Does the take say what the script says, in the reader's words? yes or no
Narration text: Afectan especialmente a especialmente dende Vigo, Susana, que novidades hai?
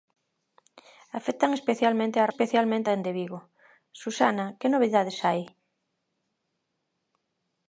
yes